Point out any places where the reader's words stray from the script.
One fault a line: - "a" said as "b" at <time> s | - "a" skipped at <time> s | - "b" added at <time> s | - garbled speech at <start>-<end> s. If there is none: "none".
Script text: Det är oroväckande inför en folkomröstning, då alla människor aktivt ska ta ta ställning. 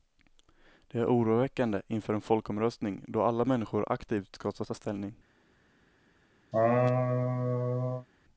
none